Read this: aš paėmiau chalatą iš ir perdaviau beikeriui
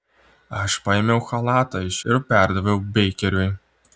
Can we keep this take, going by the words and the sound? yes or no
yes